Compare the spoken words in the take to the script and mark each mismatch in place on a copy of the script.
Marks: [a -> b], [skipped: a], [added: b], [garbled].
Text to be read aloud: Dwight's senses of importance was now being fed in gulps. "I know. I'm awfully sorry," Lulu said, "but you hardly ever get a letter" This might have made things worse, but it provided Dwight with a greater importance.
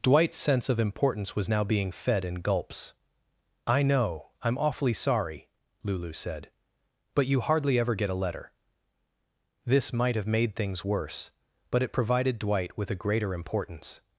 Dwight's [senses -> sense] of importance was now being fed in gulps. "I know. I'm awfully sorry," Lulu said, "but you hardly ever get a letter" This might have made things worse, but it provided Dwight with a greater importance.